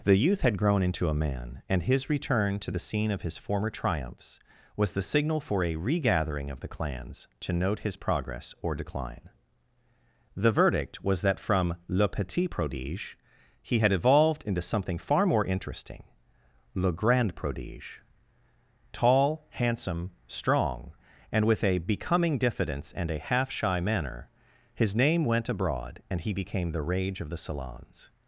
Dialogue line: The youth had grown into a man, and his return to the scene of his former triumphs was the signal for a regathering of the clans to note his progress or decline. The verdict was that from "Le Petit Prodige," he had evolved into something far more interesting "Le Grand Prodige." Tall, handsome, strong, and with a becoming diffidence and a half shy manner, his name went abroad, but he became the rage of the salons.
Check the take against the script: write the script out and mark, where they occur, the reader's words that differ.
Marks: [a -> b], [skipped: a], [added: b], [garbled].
The youth had grown into a man, and his return to the scene of his former triumphs was the signal for a regathering of the clans to note his progress or decline. The verdict was that from "Le Petit Prodige," he had evolved into something far more interesting "Le Grand Prodige." Tall, handsome, strong, and with a becoming diffidence and a half shy manner, his name went abroad, [but -> and] he became the rage of the salons.